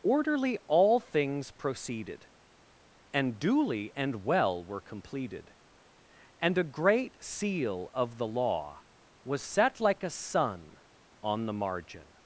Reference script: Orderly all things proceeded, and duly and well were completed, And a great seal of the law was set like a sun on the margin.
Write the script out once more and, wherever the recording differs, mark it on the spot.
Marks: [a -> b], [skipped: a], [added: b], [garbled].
Orderly all things proceeded, and duly and well were completed, And a great seal of the law was set like a sun on the margin.